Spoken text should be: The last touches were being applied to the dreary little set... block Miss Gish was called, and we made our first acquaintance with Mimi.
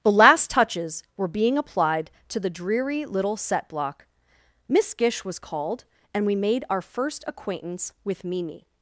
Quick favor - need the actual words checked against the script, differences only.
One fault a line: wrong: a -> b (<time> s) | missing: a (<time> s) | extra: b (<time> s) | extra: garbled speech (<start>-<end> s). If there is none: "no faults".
no faults